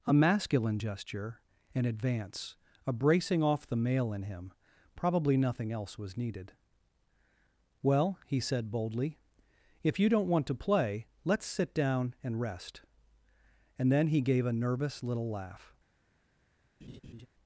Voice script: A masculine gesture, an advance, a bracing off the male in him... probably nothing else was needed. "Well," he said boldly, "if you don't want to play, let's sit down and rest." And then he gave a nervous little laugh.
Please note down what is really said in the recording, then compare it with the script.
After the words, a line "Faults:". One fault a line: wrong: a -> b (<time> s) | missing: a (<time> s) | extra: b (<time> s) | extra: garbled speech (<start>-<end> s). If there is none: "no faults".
A masculine gesture, an advance, a bracing off the male in him... probably nothing else was needed. "Well," he said boldly, "if you don't want to play, let's sit down and rest." And then he gave a nervous little laugh.
Faults:
no faults